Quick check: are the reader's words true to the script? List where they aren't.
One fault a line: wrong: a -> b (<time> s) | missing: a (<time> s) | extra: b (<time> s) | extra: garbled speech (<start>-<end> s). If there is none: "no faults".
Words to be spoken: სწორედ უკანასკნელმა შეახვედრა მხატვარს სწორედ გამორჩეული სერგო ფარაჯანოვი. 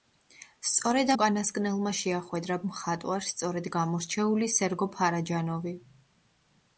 no faults